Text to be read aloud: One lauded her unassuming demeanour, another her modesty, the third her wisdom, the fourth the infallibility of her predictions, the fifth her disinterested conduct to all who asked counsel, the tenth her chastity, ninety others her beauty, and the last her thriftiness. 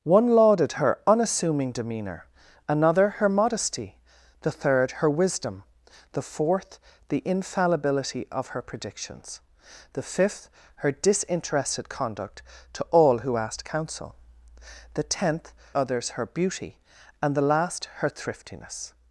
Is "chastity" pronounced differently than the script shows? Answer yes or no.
yes